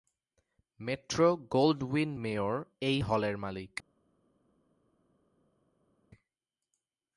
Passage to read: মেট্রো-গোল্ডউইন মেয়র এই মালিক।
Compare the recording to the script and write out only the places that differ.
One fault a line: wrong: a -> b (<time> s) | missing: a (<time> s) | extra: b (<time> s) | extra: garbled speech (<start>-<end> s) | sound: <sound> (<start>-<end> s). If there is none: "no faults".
extra: হলের (3.0 s)